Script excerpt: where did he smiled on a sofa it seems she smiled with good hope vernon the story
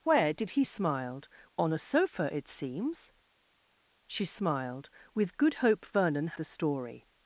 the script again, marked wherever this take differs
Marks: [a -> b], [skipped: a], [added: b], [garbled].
where did he smiled on a sofa it seems she smiled with good hope vernon the story